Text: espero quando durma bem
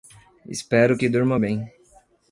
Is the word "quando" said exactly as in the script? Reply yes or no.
no